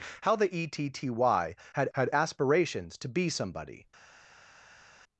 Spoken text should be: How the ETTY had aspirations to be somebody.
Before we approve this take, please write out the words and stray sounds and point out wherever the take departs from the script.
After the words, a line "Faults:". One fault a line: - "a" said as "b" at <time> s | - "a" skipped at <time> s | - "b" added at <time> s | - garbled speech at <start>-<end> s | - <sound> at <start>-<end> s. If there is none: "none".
How the ETTY had had aspirations to be somebody.
Faults:
- "had" added at 1.9 s